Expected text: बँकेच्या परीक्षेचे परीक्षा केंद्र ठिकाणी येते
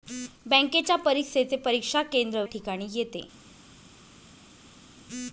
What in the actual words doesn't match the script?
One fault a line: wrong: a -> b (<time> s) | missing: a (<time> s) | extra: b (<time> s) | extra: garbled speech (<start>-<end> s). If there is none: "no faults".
no faults